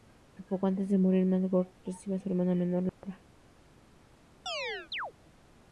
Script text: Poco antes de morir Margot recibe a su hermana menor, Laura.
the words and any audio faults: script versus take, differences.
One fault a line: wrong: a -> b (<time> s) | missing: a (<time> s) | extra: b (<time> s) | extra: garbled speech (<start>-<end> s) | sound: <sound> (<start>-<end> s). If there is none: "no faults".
sound: dropout (2.9-3.0 s)
sound: chirp (4.5-5.1 s)